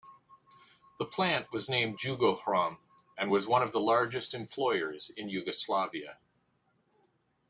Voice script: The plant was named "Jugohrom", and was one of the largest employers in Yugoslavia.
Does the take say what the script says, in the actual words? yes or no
yes